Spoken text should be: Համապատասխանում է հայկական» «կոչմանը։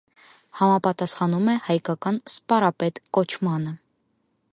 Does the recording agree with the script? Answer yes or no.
no